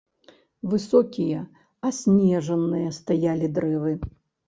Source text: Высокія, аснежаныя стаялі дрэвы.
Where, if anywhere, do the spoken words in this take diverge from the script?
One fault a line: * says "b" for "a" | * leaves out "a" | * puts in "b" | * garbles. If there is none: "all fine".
all fine